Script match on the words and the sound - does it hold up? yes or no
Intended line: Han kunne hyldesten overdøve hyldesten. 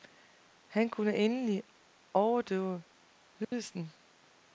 no